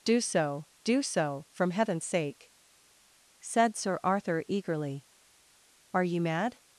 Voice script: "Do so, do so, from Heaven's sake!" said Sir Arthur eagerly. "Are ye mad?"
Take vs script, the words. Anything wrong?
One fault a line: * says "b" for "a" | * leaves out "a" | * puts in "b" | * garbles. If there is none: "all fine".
all fine